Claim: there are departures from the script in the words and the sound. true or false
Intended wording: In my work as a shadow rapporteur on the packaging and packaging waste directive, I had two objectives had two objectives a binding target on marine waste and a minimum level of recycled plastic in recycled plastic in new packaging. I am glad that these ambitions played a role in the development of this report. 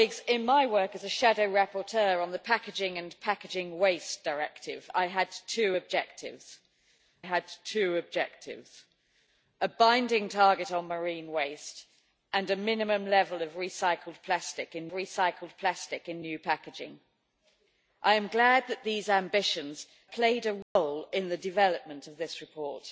true